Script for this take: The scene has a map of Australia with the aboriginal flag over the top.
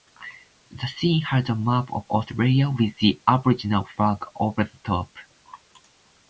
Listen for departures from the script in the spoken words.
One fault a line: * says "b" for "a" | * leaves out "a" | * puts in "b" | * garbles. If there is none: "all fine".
all fine